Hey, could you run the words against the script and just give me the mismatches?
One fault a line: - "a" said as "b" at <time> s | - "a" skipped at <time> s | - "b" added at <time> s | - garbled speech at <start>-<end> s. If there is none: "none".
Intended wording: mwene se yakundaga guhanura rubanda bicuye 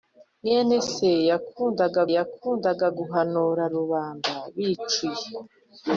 - "yakundaga" added at 2.2 s